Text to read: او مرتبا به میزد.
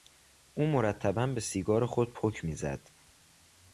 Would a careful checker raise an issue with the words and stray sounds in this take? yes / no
yes